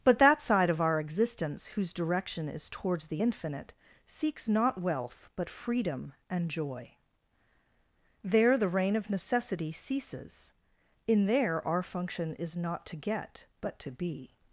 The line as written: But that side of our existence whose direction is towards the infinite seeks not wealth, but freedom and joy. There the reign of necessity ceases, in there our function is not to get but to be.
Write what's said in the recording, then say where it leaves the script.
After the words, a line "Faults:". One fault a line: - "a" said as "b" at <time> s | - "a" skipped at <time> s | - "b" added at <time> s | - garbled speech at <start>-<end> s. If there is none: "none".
But that side of our existence whose direction is towards the infinite seeks not wealth, but freedom and joy. There the reign of necessity ceases, in there our function is not to get but to be.
Faults:
none